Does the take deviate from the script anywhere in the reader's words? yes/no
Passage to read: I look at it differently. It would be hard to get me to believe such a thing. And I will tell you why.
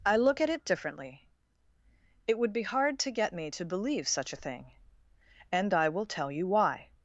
no